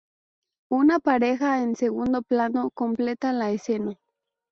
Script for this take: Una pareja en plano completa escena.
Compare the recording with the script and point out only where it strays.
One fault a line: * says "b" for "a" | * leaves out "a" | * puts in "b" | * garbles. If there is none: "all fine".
* puts in "segundo"
* puts in "la"